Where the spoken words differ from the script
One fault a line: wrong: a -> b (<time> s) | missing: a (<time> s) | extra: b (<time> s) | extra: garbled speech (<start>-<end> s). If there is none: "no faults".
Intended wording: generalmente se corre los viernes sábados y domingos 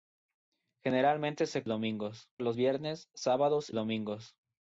wrong: corre -> domingos (1.7 s)
missing: y (3.7 s)